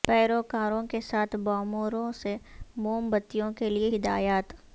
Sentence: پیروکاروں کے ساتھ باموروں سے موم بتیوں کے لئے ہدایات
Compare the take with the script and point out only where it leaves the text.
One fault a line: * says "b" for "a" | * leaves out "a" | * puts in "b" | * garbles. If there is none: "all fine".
all fine